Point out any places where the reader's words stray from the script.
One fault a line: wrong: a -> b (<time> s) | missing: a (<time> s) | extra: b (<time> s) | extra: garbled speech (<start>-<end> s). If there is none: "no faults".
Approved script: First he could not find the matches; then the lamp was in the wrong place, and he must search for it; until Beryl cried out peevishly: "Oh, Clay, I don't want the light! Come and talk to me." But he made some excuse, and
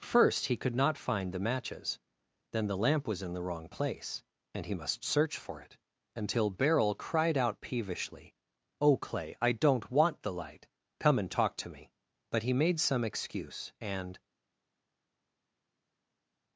no faults